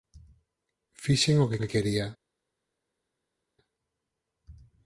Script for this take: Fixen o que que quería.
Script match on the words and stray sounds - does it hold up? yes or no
yes